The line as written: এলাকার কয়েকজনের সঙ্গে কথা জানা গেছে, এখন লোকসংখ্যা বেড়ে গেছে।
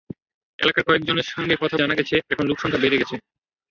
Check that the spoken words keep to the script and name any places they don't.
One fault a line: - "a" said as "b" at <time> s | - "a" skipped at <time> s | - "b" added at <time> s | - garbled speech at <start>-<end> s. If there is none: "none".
none